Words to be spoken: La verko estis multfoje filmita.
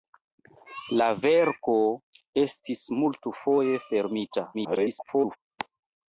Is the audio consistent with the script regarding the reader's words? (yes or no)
no